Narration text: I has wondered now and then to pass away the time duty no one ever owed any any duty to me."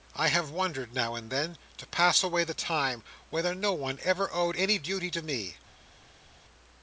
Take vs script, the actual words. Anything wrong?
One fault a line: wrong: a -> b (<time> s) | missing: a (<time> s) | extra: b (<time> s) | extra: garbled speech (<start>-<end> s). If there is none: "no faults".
wrong: has -> have (0.3 s)
wrong: duty -> whether (3.3 s)
missing: any (4.8 s)